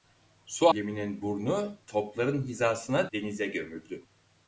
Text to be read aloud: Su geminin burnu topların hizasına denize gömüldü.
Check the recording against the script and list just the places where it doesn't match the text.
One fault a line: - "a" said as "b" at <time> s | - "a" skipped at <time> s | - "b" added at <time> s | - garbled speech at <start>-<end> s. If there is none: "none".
none